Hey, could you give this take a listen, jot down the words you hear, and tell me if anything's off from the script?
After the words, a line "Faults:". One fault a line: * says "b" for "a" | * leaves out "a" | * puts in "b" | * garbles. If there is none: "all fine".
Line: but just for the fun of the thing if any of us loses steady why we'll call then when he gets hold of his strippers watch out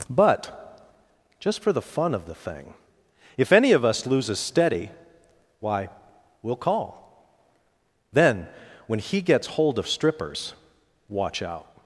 but just for the fun of the thing if any of us loses steady why we'll call then when he gets hold of strippers watch out
Faults:
* leaves out "his"